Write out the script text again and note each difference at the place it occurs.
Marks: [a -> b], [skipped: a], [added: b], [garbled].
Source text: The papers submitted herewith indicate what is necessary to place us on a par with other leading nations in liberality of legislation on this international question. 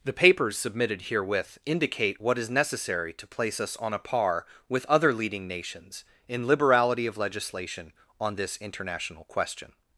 The papers submitted herewith indicate what is necessary to place us on a par with other leading nations in liberality of legislation on this international question.